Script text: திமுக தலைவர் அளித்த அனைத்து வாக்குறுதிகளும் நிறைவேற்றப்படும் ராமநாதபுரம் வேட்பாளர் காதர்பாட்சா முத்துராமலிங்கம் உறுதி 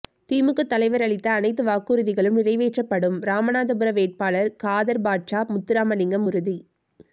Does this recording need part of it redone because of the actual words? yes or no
no